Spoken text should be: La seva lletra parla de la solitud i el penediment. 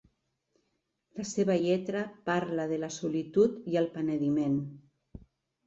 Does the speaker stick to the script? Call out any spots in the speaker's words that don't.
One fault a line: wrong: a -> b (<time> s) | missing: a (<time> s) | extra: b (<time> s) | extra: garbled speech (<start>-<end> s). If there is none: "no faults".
no faults